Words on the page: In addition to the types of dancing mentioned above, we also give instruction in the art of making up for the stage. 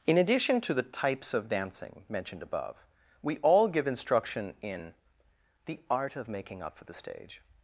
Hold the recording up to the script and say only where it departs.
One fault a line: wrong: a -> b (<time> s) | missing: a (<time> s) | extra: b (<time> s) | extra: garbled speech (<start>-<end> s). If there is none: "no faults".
wrong: also -> all (3.4 s)